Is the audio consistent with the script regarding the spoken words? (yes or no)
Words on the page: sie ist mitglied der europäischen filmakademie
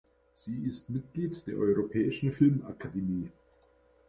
yes